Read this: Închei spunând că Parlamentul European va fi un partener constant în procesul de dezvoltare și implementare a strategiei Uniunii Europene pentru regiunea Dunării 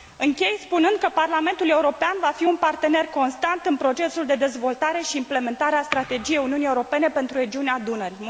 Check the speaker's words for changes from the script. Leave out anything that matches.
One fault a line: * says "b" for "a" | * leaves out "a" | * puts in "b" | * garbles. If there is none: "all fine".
all fine